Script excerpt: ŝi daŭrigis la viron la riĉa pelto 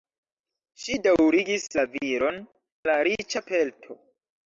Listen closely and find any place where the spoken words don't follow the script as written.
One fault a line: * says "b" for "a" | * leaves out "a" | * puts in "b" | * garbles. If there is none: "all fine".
all fine